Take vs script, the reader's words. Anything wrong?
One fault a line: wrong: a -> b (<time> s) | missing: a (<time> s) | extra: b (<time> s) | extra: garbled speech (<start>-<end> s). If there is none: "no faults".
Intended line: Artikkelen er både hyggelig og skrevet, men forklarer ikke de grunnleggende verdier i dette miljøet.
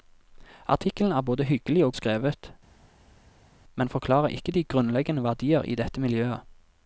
no faults